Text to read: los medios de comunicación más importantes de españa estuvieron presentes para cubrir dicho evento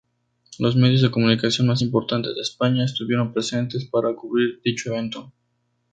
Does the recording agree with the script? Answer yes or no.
yes